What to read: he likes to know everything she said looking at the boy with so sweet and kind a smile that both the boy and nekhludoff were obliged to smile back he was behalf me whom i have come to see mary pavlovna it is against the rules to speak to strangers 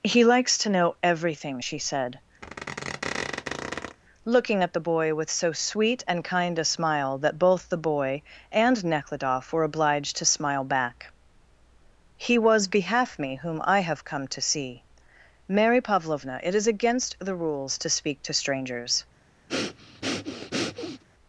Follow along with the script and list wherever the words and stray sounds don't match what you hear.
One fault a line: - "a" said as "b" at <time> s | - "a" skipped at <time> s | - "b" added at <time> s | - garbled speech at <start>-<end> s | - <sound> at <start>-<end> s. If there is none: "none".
- squeak at 2.4-4.0 s
- breath at 19.5-21.0 s